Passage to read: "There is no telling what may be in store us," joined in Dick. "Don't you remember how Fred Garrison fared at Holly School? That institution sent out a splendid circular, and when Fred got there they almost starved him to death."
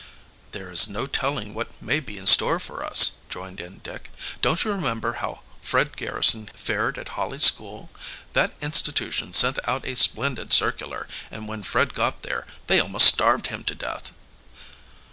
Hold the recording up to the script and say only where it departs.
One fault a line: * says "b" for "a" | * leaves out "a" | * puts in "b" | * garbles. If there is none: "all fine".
* puts in "for"